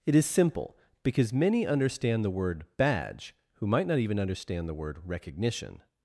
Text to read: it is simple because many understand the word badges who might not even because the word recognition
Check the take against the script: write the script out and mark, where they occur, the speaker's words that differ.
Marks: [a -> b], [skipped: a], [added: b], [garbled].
it is simple because many understand the word [badges -> badge] who might not even [because -> understand] the word recognition